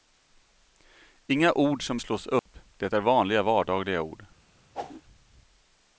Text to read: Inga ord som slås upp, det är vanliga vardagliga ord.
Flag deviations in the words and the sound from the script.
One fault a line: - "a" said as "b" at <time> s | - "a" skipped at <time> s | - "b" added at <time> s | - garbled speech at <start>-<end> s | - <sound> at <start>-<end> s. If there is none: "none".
- dropout at 2.4-2.5 s
- whoosh at 4.7-5.0 s